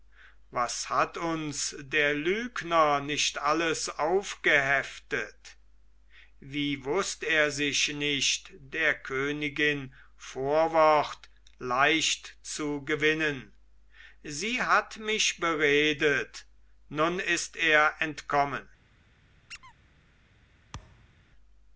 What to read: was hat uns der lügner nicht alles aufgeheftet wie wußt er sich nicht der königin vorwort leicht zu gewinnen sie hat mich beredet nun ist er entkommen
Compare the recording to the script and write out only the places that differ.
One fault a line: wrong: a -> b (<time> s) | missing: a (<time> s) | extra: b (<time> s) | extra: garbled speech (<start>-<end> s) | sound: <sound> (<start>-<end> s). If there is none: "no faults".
sound: squeak (19.5-19.7 s)
sound: thud (20.7-21.2 s)